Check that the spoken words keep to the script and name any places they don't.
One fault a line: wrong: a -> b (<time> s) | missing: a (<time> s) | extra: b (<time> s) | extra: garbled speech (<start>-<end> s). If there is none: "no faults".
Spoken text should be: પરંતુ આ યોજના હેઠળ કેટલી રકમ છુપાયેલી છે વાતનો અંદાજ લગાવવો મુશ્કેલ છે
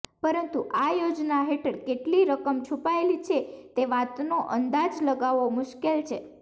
extra: તે (3.7 s)